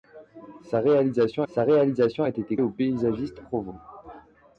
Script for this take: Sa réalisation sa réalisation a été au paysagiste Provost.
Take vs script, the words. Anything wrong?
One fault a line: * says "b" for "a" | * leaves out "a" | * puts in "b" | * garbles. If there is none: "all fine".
all fine